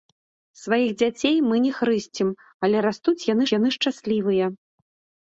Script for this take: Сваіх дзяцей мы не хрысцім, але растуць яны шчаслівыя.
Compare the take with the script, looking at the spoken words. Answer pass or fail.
fail